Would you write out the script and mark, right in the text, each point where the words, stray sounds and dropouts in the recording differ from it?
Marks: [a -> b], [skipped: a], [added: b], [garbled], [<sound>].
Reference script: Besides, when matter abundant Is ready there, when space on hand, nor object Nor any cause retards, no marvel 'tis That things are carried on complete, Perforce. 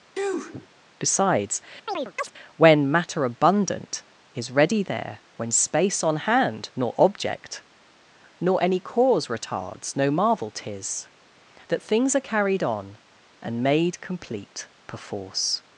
[sneeze] Besides, [chirp] when matter abundant Is ready there, when space on hand, nor object Nor any cause retards, no marvel 'tis That things are carried on [added: and made] complete, Perforce.